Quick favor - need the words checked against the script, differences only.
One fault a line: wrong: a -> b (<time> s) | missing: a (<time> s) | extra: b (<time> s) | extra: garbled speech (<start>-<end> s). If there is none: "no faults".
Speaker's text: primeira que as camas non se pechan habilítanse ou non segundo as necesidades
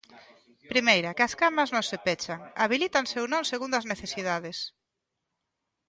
no faults